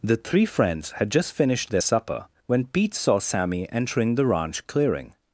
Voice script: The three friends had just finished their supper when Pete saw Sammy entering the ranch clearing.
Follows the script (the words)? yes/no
yes